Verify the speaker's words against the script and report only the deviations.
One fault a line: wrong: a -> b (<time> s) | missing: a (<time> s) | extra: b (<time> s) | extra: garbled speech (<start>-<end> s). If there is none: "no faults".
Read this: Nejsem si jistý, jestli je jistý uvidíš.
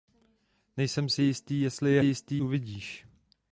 no faults